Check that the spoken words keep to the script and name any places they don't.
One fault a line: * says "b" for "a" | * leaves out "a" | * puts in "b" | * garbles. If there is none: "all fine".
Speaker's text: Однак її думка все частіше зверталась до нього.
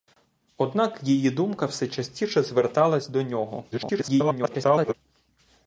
* garbles